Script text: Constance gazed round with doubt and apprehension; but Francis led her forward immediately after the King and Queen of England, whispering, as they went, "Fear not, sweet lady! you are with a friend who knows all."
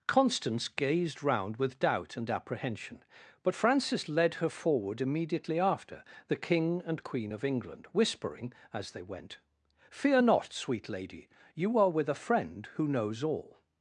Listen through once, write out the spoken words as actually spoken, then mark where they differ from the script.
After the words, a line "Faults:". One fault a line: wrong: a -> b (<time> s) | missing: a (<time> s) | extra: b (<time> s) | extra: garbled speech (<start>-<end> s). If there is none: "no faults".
Constance gazed round with doubt and apprehension; but Francis led her forward immediately after the King and Queen of England, whispering, as they went, "Fear not, sweet lady! you are with a friend who knows all."
Faults:
no faults